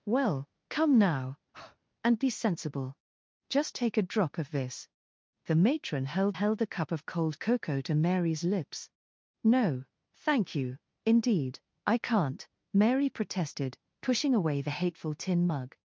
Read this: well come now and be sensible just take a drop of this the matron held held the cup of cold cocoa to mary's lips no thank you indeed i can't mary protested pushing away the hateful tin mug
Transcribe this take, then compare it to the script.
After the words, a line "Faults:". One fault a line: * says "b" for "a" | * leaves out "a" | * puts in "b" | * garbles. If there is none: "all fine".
well come now and be sensible just take a drop of this the matron held held the cup of cold cocoa to mary's lips no thank you indeed i can't mary protested pushing away the hateful tin mug
Faults:
all fine